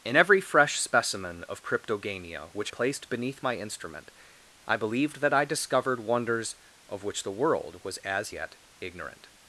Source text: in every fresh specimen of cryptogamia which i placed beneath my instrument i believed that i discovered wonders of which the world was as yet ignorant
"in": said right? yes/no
yes